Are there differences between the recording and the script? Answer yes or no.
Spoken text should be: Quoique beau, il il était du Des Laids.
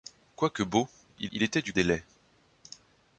no